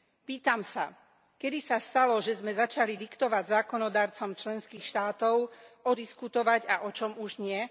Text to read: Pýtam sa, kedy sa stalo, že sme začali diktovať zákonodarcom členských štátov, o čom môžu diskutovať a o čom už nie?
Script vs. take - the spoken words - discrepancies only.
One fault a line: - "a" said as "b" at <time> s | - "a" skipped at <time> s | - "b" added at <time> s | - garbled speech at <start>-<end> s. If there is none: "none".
- "čom môžu" skipped at 5.9 s